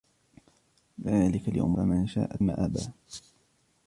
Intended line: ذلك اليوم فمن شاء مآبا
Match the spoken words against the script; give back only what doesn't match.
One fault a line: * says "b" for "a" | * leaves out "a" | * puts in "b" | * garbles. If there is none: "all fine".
all fine